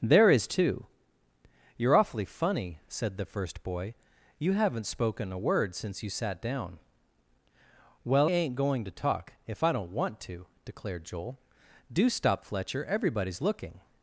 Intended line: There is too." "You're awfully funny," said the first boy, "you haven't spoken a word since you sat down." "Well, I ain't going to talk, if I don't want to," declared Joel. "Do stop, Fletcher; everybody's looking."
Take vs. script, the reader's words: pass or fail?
fail